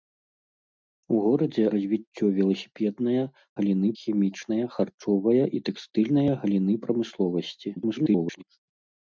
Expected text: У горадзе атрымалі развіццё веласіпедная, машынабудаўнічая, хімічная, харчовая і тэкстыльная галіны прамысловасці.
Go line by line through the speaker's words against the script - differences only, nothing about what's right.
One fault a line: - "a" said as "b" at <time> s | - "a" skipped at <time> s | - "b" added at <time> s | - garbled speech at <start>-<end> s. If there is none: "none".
- "атрымалі" skipped at 1.6 s
- "машынабудаўнічая" said as "галіны" at 3.6 s
- garbled speech at 7.8-8.4 s